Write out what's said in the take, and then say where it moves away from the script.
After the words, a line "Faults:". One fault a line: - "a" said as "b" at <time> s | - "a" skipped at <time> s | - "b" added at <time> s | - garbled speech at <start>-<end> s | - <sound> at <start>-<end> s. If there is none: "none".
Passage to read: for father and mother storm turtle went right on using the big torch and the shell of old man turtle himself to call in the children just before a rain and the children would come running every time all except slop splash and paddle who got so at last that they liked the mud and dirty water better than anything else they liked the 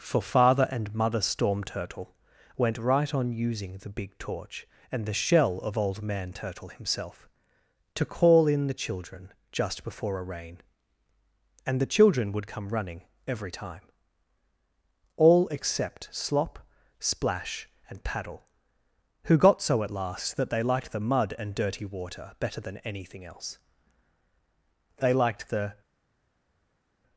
for father and mother storm turtle went right on using the big torch and the shell of old man turtle himself to call in the children just before a rain and the children would come running every time all except slop splash and paddle who got so at last that they liked the mud and dirty water better than anything else they liked the
Faults:
none